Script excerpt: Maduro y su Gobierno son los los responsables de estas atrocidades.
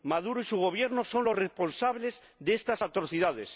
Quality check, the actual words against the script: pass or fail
fail